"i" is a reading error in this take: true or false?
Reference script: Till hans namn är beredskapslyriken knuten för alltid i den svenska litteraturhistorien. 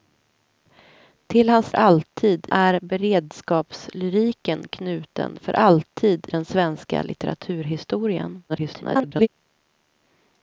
true